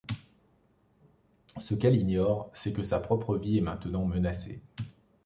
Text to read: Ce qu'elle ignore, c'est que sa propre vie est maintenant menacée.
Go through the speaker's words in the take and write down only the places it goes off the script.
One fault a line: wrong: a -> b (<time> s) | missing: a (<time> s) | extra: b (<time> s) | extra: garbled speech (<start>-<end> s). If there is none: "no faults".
no faults